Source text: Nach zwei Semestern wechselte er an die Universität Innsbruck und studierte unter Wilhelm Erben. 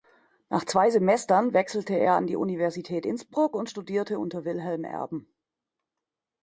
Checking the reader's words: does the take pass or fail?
pass